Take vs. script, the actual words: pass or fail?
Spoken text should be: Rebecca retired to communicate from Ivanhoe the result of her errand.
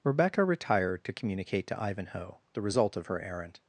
fail